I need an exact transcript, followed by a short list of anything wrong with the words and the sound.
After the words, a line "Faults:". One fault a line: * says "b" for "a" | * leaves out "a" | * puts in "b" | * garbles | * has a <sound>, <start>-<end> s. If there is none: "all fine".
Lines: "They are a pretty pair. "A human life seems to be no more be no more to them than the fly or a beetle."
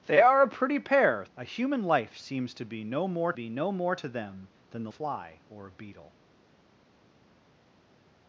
"They are a pretty pair. "A human life seems to be no more be no more to them than the fly or a beetle."
Faults:
all fine